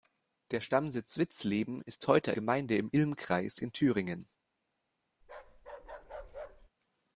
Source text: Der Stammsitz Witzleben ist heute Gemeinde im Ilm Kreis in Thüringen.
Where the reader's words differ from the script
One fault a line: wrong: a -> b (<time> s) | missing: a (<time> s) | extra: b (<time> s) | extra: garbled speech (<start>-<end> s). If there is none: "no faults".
no faults